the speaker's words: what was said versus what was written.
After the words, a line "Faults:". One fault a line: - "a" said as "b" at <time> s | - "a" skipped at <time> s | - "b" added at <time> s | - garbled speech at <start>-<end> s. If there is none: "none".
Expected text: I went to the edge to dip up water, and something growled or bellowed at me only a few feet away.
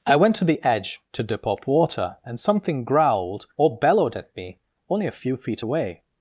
I went to the edge to dip up water, and something growled or bellowed at me only a few feet away.
Faults:
none